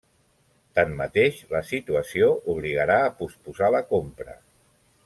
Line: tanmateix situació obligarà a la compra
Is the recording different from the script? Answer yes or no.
yes